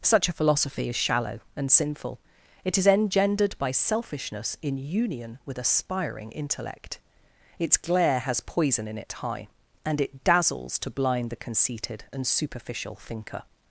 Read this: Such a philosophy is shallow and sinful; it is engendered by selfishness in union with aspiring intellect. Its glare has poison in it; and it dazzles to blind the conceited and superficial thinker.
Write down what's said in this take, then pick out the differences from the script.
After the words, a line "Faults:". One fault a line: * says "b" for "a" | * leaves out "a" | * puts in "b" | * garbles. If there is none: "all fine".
Such a philosophy is shallow and sinful; it is engendered by selfishness in union with aspiring intellect. Its glare has poison in it; high and it dazzles to blind the conceited and superficial thinker.
Faults:
* puts in "high"